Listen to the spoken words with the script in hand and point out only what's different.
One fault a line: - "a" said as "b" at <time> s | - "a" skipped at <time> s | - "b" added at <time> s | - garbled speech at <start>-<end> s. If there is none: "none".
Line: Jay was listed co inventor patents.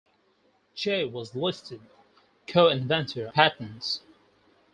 none